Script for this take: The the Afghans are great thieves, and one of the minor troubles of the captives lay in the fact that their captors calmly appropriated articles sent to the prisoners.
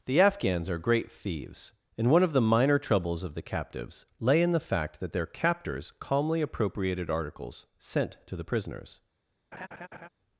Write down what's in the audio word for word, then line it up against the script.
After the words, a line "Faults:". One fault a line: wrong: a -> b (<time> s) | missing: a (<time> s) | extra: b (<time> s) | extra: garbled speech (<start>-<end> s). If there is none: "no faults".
The Afghans are great thieves, and one of the minor troubles of the captives lay in the fact that their captors calmly appropriated articles sent to the prisoners.
Faults:
missing: the (0.2 s)